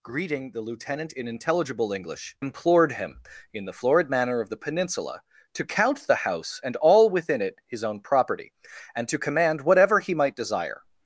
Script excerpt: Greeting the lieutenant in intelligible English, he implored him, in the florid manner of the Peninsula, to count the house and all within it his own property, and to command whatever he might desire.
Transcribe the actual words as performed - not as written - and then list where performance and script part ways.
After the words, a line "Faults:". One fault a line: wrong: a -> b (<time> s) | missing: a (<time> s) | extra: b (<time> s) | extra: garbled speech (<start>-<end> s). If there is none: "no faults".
Greeting the lieutenant in intelligible English, implored him, in the florid manner of the Peninsula, to count the house and all within it his own property, and to command whatever he might desire.
Faults:
missing: he (2.4 s)